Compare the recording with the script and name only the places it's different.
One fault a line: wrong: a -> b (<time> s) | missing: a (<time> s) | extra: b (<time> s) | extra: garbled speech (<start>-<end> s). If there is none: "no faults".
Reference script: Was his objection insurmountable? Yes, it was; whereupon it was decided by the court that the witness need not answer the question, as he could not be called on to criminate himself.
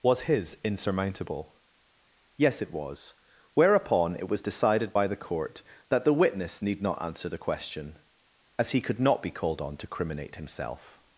missing: objection (0.6 s)